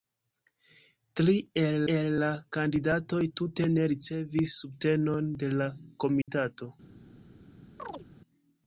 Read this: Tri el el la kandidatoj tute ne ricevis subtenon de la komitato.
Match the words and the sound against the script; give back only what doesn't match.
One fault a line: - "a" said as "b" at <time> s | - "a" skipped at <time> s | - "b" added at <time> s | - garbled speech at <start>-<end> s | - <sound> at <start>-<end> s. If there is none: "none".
- dropout at 6.2-6.3 s
- chirp at 7.8-8.1 s